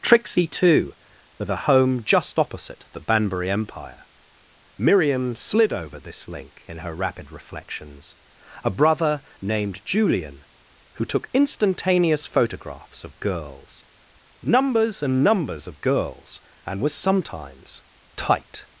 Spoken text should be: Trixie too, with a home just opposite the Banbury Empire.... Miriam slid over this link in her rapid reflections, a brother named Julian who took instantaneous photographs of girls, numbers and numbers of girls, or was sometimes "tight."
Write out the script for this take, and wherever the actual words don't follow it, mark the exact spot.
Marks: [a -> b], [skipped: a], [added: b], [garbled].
Trixie too, with a home just opposite the Banbury Empire.... Miriam slid over this link in her rapid reflections, a brother named Julian who took instantaneous photographs of girls, numbers and numbers of girls, [or -> and] was sometimes "tight."